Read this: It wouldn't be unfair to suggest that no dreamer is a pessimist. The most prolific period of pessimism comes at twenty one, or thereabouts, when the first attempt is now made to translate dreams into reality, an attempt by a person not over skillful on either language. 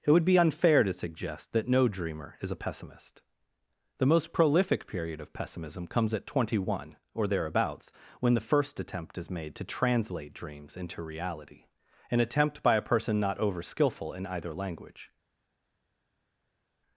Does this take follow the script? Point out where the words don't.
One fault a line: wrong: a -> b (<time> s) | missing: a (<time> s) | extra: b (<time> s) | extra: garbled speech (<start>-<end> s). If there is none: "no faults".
wrong: wouldn't -> would (0.1 s)
missing: now (9.3 s)
wrong: on -> in (14.1 s)